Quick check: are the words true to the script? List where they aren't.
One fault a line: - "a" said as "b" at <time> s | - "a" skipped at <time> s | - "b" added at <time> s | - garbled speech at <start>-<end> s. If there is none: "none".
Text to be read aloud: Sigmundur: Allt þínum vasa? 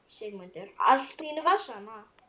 none